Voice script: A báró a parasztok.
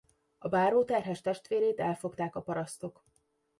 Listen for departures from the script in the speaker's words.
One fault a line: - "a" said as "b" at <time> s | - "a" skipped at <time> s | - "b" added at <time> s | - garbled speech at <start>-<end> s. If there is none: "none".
- "terhes testvérét elfogták" added at 0.8 s